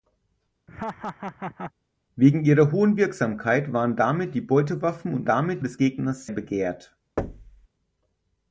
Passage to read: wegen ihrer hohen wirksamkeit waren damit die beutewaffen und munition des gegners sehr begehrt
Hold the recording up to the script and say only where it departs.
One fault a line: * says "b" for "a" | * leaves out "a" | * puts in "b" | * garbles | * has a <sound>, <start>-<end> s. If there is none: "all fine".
* has a laugh, 0.7-1.7 s
* says "damit" for "munition"
* leaves out "sehr"
* has a thud, 7.2-7.7 s